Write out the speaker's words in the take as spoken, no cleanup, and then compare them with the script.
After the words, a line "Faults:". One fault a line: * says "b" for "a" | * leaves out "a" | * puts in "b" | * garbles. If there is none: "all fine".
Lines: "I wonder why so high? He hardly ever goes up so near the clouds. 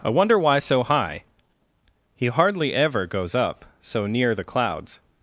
"I wonder why so high? He hardly ever goes up so near the clouds.
Faults:
all fine